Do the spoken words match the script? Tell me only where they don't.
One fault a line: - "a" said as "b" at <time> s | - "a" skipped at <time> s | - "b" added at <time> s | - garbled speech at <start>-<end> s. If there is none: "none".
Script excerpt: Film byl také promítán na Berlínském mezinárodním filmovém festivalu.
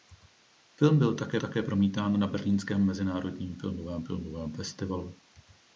- "také" added at 1.4 s
- "filmovém" added at 4.0 s